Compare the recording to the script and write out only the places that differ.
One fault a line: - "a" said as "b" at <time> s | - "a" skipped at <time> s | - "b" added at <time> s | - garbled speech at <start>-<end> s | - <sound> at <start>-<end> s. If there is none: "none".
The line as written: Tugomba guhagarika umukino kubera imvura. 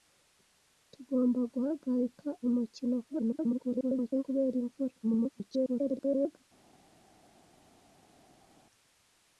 - garbled speech at 3.1-4.2 s
- garbled speech at 5.0-6.4 s